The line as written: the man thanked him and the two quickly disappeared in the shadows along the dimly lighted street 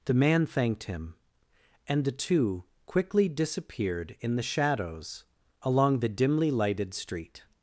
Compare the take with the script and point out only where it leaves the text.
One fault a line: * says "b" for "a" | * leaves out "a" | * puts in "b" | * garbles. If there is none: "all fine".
all fine